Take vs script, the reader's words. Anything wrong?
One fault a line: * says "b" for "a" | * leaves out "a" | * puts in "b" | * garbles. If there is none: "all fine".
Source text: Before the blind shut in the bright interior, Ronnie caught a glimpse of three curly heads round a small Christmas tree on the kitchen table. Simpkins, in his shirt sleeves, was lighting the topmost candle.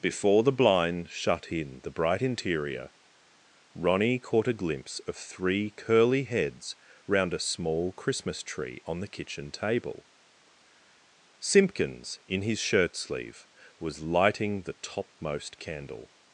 * says "sleeve" for "sleeves"